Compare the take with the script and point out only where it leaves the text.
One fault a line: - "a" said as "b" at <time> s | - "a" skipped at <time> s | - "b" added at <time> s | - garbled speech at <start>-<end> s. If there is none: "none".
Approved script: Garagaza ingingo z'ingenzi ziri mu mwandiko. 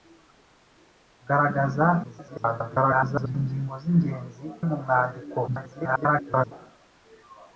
- garbled speech at 2.0-3.4 s
- "ziri" skipped at 4.4 s
- garbled speech at 5.5-6.5 s